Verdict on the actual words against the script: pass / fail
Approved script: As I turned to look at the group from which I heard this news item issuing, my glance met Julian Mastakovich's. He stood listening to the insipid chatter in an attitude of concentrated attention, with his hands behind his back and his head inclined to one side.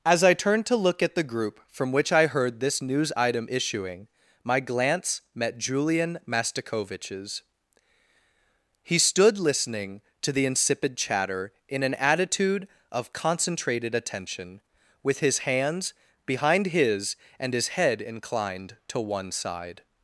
fail